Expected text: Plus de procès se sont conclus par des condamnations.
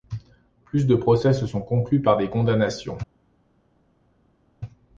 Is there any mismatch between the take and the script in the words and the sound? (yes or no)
no